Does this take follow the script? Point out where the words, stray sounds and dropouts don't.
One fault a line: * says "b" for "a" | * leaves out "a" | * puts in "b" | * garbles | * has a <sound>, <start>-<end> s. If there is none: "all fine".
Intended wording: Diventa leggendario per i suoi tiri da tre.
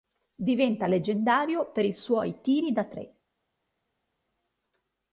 all fine